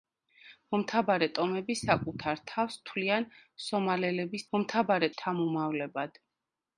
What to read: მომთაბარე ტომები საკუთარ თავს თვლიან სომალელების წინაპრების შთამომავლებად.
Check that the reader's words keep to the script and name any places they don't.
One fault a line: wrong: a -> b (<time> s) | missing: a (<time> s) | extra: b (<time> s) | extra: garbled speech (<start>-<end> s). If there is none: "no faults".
wrong: წინაპრების -> მომთაბარე (4.6 s)